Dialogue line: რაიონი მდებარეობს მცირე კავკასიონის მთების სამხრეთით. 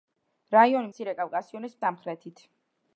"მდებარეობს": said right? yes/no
no